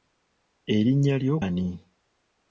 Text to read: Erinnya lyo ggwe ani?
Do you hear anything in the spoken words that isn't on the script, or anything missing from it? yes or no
yes